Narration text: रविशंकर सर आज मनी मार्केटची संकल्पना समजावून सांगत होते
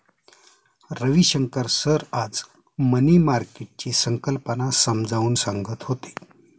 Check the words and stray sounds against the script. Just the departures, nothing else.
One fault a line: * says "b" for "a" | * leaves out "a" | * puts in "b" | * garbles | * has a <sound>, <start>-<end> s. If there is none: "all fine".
all fine